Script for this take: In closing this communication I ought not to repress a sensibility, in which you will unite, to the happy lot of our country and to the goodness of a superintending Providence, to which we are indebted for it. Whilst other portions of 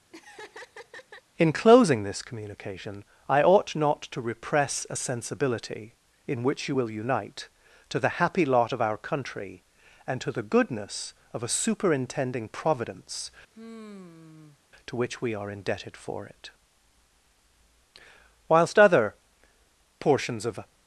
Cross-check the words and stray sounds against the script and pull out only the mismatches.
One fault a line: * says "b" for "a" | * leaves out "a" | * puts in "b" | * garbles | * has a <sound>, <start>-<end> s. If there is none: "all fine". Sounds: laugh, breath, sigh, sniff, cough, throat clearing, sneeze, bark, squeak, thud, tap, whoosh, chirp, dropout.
* has a laugh, 0.1-1.2 s
* has a sigh, 13.5-14.6 s